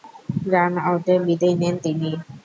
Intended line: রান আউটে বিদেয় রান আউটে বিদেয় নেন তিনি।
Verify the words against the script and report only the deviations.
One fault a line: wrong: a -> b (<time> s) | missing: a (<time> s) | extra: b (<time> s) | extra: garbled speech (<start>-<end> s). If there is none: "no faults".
missing: রান আউটে বিদেয় (1.6 s)